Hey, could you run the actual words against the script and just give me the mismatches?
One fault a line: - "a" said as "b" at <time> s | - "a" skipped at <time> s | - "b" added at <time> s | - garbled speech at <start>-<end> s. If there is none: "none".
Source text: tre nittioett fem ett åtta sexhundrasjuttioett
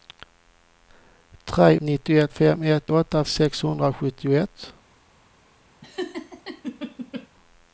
none